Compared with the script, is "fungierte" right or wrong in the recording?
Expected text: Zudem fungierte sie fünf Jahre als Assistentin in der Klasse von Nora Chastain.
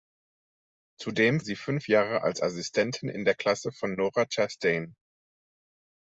wrong